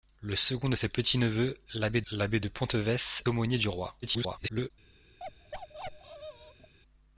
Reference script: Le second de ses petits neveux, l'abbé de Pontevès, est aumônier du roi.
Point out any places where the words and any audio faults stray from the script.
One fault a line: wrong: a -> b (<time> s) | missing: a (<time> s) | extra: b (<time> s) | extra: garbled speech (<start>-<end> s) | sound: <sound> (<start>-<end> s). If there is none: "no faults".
extra: l'abbé (2.1 s)
missing: est (3.3 s)
extra: garbled speech (4.0-4.7 s)
sound: bark (5.2-6.7 s)